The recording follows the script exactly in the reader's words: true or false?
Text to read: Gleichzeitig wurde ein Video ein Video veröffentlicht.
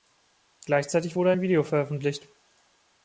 false